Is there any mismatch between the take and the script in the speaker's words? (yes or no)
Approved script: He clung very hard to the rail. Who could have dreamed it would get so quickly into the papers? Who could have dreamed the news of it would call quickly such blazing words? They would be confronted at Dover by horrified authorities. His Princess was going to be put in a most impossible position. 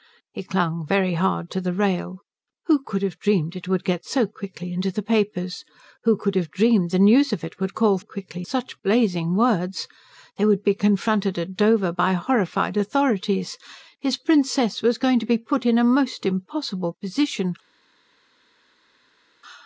no